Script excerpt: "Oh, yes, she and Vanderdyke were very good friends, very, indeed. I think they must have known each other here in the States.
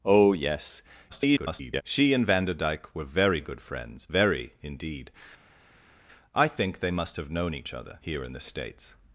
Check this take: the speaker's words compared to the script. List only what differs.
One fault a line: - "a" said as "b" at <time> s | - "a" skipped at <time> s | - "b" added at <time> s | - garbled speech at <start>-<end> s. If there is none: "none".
- garbled speech at 1.1-1.8 s